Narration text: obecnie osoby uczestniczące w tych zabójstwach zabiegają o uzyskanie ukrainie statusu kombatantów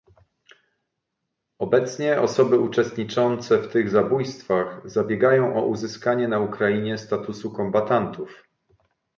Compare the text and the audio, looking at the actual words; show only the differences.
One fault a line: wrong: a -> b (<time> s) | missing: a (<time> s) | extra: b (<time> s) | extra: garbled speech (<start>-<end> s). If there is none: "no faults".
extra: na (6.3 s)